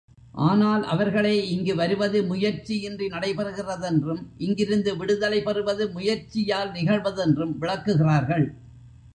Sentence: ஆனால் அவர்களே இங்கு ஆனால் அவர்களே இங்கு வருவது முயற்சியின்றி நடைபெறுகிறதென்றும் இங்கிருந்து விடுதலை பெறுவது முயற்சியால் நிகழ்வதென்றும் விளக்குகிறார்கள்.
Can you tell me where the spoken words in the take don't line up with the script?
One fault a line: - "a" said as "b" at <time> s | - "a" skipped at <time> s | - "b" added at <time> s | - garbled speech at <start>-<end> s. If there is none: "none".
- "ஆனால் அவர்களே இங்கு" skipped at 1.8 s